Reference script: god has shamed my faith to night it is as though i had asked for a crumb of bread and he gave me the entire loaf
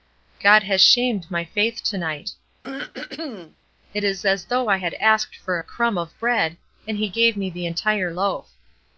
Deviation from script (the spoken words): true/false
false